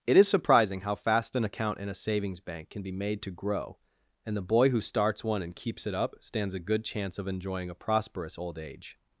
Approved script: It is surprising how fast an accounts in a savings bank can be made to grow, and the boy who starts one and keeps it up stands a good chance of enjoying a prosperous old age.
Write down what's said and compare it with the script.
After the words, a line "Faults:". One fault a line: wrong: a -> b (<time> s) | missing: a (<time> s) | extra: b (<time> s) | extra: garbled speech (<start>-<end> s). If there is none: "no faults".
It is surprising how fast an account in a savings bank can be made to grow, and the boy who starts one and keeps it up stands a good chance of enjoying a prosperous old age.
Faults:
wrong: accounts -> account (1.4 s)